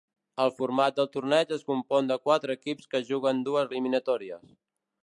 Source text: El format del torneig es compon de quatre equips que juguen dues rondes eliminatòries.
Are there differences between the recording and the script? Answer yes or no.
yes